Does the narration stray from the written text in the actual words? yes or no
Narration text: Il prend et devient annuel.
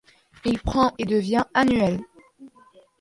no